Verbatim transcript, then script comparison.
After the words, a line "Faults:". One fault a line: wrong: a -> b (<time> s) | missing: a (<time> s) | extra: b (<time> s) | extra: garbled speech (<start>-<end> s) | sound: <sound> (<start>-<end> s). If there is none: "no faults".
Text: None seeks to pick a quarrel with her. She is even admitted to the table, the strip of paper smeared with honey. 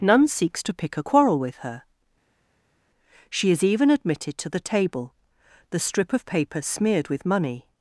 None seeks to pick a quarrel with her. She is even admitted to the table, the strip of paper smeared with money.
Faults:
wrong: honey -> money (7.3 s)